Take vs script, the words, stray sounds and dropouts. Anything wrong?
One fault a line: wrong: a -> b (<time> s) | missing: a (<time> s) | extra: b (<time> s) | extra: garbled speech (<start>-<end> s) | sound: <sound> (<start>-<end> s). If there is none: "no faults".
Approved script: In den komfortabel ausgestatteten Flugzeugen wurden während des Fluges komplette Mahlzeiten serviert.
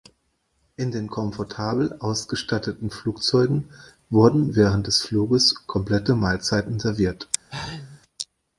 sound: sneeze (7.5-8.0 s)